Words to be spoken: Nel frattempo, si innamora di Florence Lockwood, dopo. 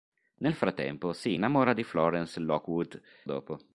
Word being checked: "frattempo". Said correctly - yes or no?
yes